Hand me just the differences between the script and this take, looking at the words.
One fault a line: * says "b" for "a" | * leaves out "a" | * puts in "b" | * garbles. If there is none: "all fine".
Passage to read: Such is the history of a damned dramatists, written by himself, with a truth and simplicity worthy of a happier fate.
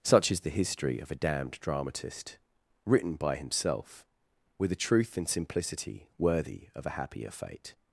* says "dramatist" for "dramatists"